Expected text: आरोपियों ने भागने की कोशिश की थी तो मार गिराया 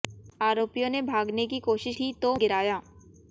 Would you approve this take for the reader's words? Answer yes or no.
no